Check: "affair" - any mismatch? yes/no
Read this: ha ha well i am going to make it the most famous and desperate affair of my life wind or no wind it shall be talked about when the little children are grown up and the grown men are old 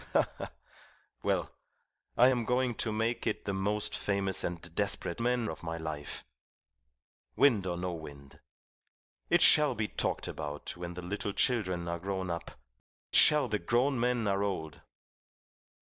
yes